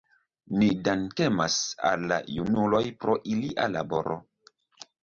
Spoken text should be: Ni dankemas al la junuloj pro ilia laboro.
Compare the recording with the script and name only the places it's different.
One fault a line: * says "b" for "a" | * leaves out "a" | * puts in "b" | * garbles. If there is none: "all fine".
all fine